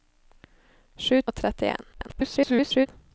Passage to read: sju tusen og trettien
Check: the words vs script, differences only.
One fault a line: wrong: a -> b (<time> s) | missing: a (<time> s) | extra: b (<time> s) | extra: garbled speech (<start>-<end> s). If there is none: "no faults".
missing: tusen (1.2 s)
extra: garbled speech (1.9-2.9 s)